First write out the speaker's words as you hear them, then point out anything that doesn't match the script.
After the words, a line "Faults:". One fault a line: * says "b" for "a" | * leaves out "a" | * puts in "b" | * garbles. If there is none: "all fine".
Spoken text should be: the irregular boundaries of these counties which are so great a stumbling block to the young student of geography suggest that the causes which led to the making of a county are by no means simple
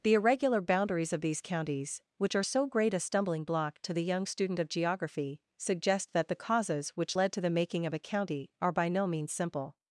the irregular boundaries of these counties which are so great a stumbling block to the young student of geography suggest that the causes which led to the making of a county are by no means simple
Faults:
all fine